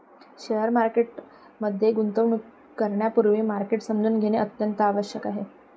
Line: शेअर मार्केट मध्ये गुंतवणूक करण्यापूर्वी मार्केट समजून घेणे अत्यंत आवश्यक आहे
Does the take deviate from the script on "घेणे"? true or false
false